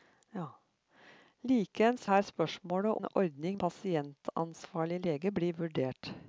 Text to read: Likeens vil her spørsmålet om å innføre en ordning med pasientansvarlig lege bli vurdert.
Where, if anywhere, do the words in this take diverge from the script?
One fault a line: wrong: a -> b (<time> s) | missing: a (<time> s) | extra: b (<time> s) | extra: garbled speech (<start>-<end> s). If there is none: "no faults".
missing: vil (2.1 s)
missing: om å innføre (3.0 s)
missing: med (3.6 s)